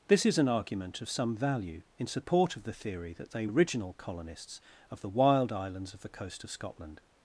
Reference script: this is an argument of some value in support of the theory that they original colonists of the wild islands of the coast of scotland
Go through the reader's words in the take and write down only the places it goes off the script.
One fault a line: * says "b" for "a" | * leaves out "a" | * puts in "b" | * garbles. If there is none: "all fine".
all fine